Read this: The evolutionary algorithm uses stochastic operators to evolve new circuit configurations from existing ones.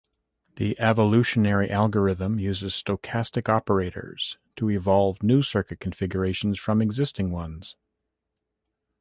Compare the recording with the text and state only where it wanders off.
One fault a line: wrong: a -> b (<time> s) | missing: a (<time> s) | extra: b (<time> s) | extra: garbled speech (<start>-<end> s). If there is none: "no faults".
no faults